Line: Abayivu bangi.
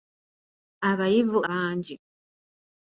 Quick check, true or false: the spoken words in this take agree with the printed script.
true